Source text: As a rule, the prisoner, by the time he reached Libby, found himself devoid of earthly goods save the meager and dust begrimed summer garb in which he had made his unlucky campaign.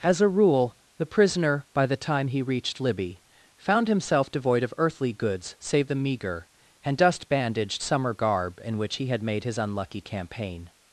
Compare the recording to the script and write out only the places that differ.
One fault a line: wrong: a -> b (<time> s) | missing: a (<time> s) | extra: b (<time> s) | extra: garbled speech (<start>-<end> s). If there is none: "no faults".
wrong: begrimed -> bandaged (7.3 s)